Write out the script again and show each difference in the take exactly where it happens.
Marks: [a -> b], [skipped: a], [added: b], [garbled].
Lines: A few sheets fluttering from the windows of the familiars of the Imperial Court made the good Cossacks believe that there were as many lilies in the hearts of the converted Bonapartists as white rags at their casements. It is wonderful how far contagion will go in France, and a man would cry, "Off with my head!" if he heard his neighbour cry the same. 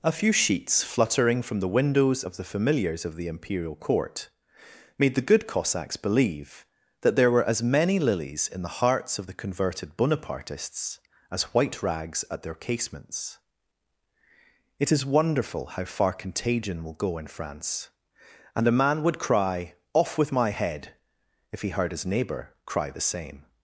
A few sheets fluttering from the windows of the familiars of the Imperial Court made the good Cossacks believe that there were as many lilies in the hearts of the converted Bonapartists as white rags at their casements. It is wonderful how far contagion will go in France, and a man would cry, "Off with my head!" if he heard his neighbour cry the same.